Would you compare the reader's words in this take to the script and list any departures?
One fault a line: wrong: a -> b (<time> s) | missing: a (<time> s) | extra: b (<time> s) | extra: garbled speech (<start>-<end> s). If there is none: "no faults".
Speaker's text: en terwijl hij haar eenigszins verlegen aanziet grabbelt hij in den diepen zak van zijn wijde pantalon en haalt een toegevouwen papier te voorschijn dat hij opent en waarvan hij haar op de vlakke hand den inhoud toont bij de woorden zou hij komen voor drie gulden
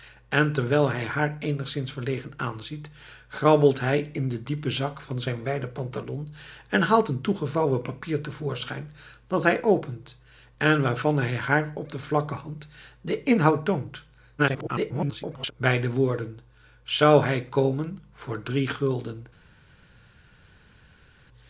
extra: garbled speech (14.4-15.5 s)